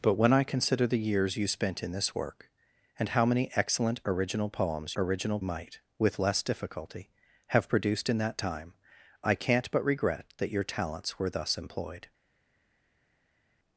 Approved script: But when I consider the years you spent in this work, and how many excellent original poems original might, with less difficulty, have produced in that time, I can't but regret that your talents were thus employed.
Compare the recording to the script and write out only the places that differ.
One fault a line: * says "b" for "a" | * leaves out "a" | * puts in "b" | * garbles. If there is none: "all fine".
all fine